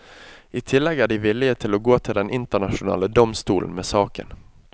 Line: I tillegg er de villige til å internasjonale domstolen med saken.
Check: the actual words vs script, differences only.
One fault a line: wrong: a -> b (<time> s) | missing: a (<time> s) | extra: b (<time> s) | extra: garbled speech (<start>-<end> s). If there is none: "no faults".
extra: gå til den (1.8 s)